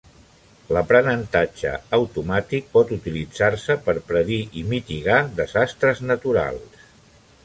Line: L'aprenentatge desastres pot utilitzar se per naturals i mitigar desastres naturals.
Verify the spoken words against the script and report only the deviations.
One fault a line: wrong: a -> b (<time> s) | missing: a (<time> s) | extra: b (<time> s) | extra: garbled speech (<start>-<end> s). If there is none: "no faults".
wrong: desastres -> automàtic (2.0 s)
wrong: naturals -> predir (4.1 s)